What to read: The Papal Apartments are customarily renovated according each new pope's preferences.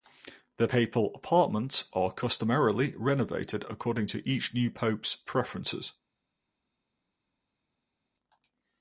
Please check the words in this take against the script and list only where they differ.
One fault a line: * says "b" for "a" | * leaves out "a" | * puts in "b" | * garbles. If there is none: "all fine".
* puts in "to"